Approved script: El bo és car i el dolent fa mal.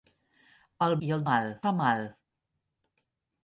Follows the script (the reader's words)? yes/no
no